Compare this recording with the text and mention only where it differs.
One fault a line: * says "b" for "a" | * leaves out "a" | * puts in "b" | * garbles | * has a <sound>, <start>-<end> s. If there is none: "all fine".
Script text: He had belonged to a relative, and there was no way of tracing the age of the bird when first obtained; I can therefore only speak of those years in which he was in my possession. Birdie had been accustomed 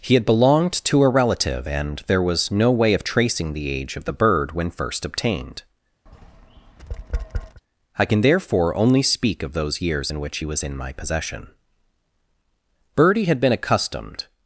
* has a tap, 6.1-7.6 s